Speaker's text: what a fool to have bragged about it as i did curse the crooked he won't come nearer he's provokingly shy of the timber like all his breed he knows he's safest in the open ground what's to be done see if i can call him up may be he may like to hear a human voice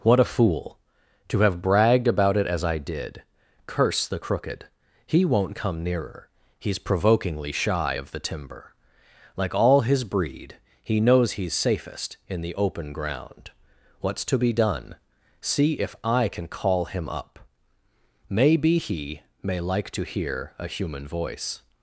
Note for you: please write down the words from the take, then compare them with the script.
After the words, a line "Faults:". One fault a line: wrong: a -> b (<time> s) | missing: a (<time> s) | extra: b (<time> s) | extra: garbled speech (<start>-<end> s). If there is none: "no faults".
what a fool to have bragged about it as i did curse the crooked he won't come nearer he's provokingly shy of the timber like all his breed he knows he's safest in the open ground what's to be done see if i can call him up may be he may like to hear a human voice
Faults:
no faults